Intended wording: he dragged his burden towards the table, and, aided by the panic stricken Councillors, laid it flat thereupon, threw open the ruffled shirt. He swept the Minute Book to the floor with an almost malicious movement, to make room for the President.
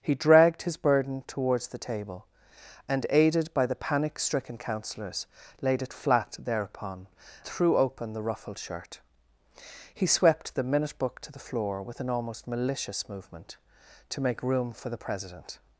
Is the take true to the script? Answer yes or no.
yes